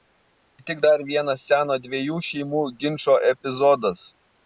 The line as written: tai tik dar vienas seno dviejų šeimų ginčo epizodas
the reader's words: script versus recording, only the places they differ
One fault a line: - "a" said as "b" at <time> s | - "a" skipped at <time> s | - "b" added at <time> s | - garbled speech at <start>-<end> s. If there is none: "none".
none